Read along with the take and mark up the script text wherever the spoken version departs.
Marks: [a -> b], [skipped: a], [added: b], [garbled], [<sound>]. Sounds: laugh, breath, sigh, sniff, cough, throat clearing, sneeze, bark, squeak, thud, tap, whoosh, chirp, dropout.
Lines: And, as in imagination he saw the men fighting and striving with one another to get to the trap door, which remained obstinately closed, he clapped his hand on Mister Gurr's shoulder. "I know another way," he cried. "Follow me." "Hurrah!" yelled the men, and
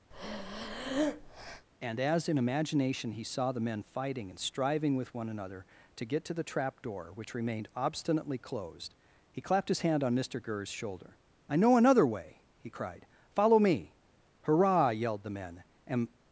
[breath] And, as in imagination he saw the men fighting and striving with one another to get to the trap door, which remained obstinately closed, he clapped his hand on Mister Gurr's shoulder. "I know another way," he cried. "Follow me." "Hurrah!" yelled the men, and